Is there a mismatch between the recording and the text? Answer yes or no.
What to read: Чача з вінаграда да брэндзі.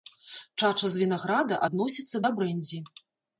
yes